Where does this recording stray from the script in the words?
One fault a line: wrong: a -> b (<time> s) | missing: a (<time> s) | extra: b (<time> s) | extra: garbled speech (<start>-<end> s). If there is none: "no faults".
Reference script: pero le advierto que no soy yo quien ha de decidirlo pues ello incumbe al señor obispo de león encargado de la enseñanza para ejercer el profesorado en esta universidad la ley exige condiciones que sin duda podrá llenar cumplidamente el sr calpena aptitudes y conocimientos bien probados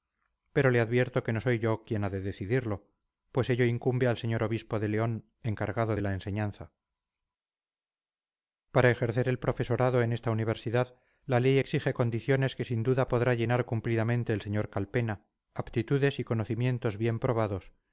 no faults